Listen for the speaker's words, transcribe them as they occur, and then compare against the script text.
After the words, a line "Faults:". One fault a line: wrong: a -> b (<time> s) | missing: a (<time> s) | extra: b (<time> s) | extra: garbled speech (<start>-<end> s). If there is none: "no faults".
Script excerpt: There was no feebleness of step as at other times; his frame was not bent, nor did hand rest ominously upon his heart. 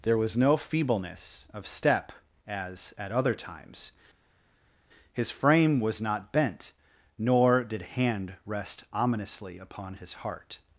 There was no feebleness of step as at other times; his frame was not bent, nor did hand rest ominously upon his heart.
Faults:
no faults